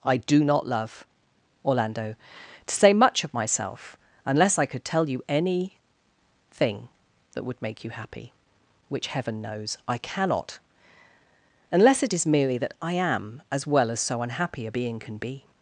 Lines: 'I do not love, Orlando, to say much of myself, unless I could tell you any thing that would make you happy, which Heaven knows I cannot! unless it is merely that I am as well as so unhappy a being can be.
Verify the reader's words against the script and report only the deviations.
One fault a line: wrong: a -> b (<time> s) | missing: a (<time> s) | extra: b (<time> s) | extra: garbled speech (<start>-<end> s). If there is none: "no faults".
no faults